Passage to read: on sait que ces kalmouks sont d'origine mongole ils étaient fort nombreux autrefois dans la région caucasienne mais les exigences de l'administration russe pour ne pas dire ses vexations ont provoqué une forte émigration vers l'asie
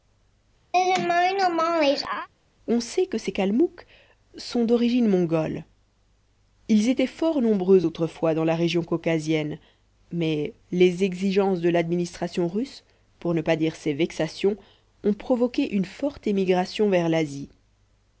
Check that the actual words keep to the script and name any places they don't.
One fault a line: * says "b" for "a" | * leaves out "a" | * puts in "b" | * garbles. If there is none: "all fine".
all fine